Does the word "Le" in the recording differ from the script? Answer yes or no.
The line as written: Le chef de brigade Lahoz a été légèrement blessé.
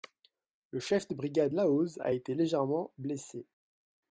no